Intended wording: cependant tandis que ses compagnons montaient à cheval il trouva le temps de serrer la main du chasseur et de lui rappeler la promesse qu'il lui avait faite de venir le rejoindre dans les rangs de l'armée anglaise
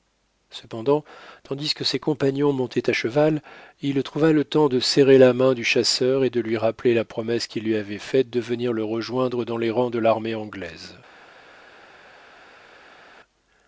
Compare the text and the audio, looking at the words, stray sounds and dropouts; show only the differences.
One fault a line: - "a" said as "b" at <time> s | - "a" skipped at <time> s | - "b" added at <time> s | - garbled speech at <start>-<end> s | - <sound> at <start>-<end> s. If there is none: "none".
none